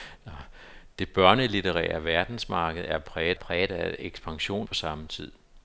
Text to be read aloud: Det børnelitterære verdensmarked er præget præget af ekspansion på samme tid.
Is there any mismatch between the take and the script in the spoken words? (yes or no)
no